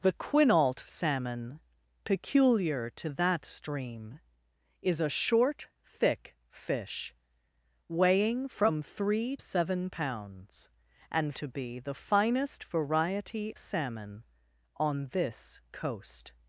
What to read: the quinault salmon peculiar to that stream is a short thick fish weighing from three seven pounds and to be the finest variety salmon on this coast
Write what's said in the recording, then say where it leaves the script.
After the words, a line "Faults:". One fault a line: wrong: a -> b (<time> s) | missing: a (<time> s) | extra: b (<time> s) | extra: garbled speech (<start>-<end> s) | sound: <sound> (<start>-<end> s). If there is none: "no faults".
the quinault salmon peculiar to that stream is a short thick fish weighing from three seven pounds and to be the finest variety salmon on this coast
Faults:
no faults